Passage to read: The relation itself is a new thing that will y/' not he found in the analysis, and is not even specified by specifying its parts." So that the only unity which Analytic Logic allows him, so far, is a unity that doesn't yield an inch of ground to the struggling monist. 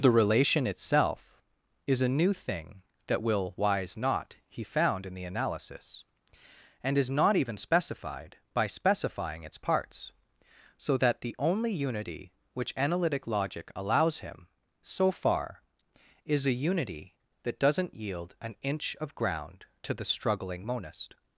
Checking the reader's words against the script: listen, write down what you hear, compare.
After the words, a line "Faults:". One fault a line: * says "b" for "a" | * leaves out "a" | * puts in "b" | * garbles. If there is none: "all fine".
The relation itself is a new thing that will wise/' not he found in the analysis, and is not even specified by specifying its parts." So that the only unity which Analytic Logic allows him, so far, is a unity that doesn't yield an inch of ground to the struggling monist.
Faults:
* says "wise" for "y"